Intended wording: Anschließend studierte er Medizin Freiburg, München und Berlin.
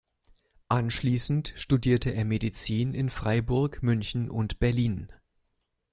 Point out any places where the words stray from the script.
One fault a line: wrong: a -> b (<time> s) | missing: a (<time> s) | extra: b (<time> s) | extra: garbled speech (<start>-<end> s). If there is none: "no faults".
extra: in (2.9 s)